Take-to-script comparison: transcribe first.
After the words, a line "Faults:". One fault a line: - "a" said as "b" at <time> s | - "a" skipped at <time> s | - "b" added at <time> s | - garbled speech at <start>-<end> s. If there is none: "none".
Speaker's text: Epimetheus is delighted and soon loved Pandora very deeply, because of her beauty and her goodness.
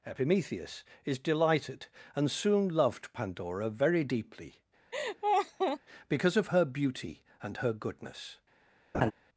Epimetheus is delighted and soon loved Pandora very deeply, because of her beauty and her goodness.
Faults:
none